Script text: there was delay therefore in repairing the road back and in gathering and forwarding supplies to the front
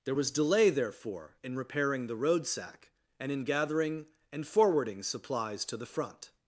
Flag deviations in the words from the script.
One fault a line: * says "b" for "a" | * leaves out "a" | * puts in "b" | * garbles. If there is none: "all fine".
* says "sack" for "back"